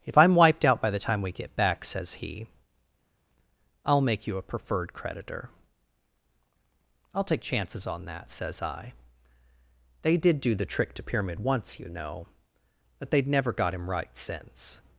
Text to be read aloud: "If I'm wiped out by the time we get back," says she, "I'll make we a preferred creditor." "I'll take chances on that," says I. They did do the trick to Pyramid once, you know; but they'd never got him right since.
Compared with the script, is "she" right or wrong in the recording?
wrong